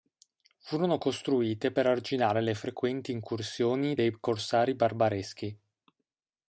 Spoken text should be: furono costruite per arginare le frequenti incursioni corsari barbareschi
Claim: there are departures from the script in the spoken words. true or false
true